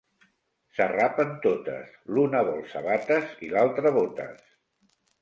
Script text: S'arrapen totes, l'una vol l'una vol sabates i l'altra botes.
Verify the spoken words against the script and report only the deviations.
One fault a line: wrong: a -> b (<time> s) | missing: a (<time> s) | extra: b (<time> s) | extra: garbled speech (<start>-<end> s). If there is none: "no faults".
missing: l'una vol (2.6 s)